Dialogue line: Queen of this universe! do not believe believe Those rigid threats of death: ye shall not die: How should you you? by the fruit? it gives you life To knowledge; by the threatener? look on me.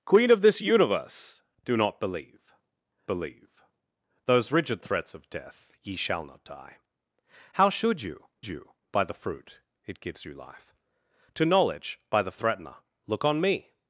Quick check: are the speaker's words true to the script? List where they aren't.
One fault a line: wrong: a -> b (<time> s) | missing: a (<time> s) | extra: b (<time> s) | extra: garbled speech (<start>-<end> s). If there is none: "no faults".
no faults